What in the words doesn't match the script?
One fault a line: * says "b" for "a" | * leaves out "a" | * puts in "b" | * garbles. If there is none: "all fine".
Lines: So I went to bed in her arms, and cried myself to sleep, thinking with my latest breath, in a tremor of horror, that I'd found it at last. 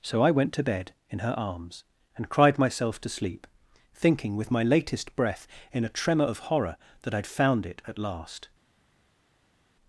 all fine